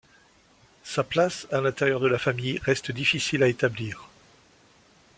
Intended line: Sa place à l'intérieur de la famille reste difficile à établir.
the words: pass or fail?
pass